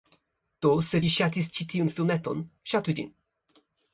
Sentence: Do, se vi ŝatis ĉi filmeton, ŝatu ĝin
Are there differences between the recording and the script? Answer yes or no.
yes